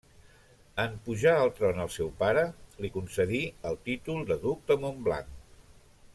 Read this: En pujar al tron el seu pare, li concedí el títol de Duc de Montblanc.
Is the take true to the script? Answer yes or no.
yes